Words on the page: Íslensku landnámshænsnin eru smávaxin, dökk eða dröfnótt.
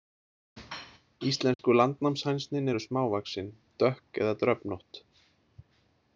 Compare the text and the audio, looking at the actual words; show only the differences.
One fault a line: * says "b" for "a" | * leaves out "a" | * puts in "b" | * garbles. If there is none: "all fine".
all fine